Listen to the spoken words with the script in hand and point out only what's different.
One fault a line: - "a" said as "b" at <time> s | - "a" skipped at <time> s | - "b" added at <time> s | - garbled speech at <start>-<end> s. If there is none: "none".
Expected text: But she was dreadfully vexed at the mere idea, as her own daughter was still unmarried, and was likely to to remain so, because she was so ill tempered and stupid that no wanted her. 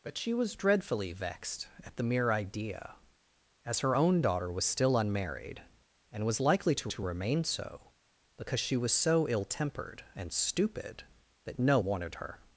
none